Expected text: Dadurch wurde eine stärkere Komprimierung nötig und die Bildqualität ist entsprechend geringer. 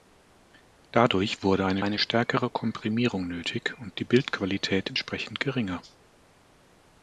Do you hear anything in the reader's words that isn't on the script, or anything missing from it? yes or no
yes